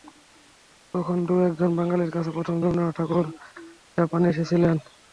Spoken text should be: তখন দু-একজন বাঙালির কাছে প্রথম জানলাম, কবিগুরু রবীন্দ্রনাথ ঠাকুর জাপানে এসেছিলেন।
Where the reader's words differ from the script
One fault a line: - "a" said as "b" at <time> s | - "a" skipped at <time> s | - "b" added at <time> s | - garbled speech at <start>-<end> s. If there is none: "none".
- "জানলাম কবিগুরু" skipped at 2.5 s